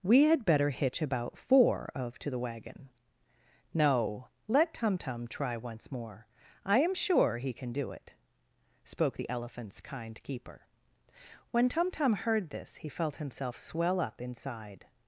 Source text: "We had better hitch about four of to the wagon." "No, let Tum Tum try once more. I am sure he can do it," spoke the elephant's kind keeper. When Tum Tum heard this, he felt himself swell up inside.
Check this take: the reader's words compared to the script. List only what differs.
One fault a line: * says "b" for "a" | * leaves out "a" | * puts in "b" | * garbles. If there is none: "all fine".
all fine